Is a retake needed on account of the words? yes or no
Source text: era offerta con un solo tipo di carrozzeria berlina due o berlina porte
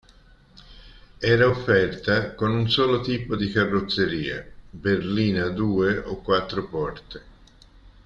yes